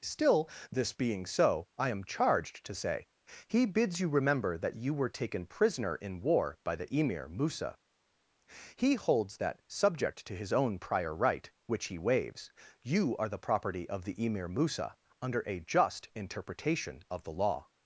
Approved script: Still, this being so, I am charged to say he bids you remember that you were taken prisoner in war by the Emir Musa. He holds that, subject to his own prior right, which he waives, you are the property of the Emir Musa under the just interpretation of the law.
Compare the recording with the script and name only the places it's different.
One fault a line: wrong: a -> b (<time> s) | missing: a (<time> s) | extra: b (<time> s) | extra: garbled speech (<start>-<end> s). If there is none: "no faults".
wrong: the -> a (15.4 s)